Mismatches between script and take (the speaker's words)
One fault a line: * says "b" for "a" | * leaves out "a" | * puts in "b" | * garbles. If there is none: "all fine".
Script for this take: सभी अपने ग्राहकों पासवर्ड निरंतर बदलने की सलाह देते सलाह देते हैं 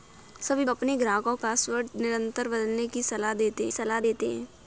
all fine